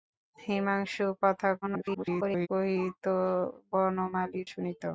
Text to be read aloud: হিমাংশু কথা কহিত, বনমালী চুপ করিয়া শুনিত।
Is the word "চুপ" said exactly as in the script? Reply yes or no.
no